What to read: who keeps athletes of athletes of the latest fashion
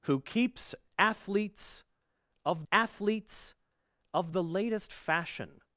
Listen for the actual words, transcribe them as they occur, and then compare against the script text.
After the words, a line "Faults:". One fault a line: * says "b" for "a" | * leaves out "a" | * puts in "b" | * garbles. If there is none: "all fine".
who keeps athletes of athletes of the latest fashion
Faults:
all fine